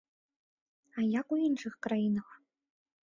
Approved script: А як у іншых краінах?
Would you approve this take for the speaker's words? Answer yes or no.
yes